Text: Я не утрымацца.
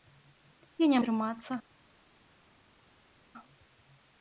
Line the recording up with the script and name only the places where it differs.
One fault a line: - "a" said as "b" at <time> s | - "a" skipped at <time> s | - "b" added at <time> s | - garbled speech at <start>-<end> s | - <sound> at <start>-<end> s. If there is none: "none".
none